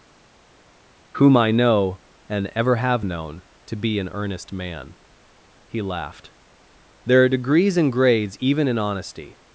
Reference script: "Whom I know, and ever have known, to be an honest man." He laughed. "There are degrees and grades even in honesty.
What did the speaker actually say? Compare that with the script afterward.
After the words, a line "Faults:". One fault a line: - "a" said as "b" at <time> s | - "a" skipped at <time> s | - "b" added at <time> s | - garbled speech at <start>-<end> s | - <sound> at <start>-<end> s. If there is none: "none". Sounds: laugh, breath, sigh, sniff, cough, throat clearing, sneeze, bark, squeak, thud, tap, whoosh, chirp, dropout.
"Whom I know, and ever have known, to be an earnest man." He laughed. "There are degrees and grades even in honesty.
Faults:
- "honest" said as "earnest" at 4.1 s